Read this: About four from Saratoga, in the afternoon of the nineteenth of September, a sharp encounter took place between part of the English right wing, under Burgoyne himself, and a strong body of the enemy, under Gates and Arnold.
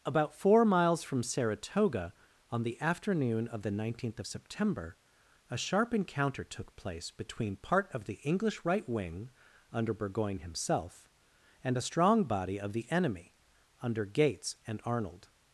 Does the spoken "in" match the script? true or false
false